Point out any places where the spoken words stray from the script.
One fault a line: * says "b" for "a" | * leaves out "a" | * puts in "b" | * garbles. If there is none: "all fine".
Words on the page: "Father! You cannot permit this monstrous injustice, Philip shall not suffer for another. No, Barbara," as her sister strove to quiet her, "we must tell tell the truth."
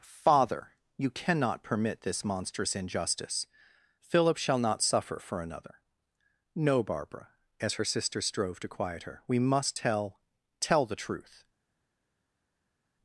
all fine